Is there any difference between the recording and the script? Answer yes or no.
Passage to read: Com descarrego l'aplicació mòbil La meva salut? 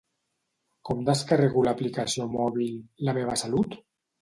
no